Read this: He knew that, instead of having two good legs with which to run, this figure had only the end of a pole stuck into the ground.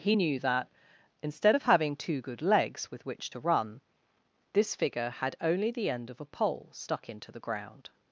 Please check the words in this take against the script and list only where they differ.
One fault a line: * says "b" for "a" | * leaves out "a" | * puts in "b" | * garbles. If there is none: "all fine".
all fine